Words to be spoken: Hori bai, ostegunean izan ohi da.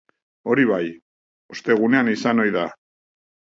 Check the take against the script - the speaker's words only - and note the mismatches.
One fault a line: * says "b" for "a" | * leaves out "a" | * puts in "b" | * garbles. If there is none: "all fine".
all fine